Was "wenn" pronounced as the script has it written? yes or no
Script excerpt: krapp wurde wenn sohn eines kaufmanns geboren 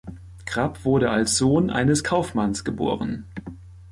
no